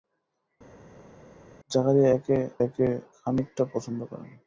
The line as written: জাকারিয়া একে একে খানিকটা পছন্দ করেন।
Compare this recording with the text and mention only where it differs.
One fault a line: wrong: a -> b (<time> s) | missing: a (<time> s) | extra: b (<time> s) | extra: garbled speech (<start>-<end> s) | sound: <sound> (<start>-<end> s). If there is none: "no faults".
no faults